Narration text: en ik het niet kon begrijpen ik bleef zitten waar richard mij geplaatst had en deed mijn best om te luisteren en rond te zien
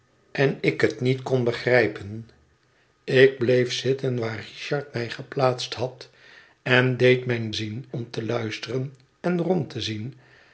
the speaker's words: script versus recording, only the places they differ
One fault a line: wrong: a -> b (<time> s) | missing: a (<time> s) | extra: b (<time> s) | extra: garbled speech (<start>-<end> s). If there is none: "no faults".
wrong: best -> zien (7.5 s)